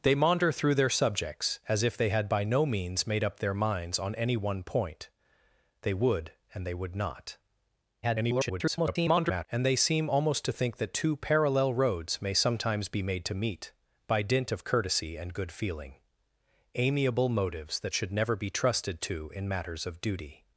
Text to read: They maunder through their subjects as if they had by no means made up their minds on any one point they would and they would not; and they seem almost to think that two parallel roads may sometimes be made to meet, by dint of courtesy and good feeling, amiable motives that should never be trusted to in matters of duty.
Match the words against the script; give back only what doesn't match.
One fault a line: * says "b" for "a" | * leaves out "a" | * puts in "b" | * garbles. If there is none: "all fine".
* garbles